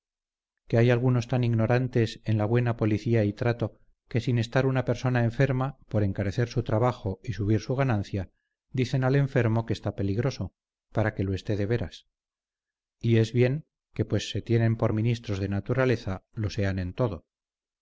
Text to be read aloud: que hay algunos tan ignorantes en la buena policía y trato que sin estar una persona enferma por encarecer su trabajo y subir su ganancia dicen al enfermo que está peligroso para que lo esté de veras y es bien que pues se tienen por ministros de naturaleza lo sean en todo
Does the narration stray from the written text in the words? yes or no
no